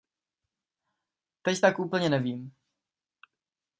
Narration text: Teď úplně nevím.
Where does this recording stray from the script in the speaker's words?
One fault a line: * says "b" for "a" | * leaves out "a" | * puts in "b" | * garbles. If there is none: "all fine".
* puts in "tak"